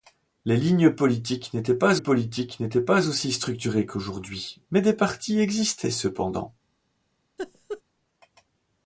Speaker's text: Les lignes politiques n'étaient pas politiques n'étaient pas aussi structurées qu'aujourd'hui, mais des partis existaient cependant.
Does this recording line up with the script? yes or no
yes